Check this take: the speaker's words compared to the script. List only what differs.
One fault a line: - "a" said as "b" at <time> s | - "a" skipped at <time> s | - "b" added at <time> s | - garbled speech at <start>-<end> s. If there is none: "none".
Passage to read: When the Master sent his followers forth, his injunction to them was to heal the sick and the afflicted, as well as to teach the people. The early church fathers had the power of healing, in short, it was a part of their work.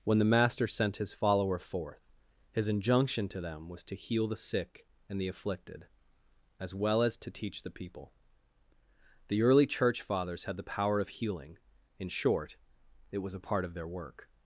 - "followers" said as "follower" at 1.1 s